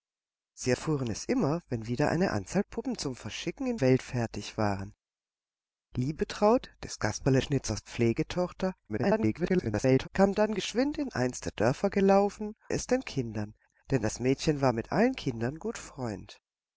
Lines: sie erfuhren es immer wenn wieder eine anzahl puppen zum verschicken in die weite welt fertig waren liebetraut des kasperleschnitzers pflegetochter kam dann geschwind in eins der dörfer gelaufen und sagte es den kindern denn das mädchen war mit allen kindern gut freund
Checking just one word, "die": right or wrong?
wrong